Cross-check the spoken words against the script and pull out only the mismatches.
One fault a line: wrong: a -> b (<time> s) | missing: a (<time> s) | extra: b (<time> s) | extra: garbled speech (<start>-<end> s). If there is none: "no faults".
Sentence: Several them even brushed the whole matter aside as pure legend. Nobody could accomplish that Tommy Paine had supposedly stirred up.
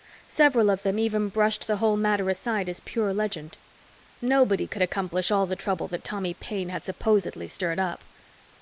extra: of (0.7 s)
extra: all the trouble (5.3 s)